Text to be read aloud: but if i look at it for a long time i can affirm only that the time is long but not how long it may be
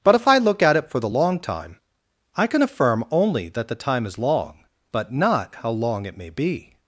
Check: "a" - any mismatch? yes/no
yes